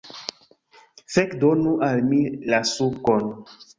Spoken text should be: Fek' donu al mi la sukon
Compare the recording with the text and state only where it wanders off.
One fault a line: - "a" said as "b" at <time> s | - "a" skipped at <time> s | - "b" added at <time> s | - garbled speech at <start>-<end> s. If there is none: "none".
none